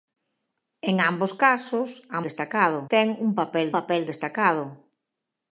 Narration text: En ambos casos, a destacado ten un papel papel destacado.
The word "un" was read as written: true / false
true